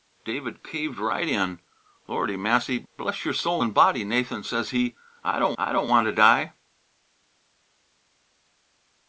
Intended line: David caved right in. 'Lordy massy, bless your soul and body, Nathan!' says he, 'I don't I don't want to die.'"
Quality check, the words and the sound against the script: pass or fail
pass